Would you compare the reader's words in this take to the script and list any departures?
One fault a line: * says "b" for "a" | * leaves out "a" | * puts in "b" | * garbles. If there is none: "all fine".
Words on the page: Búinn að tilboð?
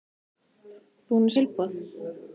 all fine